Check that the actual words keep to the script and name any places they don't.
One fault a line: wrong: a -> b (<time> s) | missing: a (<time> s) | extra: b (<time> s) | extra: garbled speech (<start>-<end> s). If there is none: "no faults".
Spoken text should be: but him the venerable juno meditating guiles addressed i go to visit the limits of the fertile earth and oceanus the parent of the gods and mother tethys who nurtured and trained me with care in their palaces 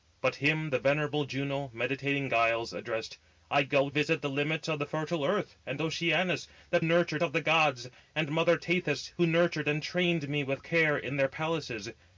missing: to (3.9 s)
wrong: parent -> nurtured (6.8 s)